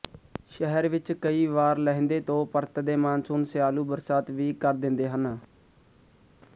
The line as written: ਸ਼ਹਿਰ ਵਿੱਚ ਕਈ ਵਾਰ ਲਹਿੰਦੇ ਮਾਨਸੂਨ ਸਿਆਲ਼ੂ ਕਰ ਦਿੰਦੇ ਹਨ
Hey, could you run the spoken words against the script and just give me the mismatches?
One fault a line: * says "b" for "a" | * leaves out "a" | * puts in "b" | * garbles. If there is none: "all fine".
* puts in "ਤੋਂ ਪਰਤਦੇ"
* puts in "ਬਰਸਾਤ ਵੀ"